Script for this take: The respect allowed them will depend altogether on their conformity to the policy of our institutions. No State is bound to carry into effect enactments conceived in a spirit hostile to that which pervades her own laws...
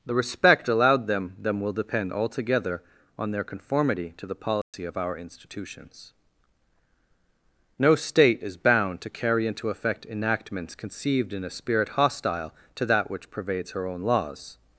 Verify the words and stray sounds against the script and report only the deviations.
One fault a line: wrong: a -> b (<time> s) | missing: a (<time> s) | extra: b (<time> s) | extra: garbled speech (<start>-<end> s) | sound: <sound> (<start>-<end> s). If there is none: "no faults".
extra: them (1.4 s)
sound: dropout (4.6-4.7 s)